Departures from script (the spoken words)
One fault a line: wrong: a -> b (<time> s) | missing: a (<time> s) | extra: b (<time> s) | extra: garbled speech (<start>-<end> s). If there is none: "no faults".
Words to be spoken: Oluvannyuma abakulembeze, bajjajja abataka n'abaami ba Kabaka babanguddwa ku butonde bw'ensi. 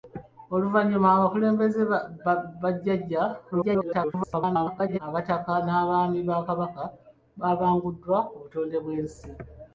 extra: garbled speech (3.5-5.0 s)